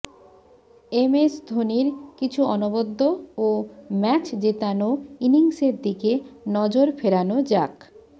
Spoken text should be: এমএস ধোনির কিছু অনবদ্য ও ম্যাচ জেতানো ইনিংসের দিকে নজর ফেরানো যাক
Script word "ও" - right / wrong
right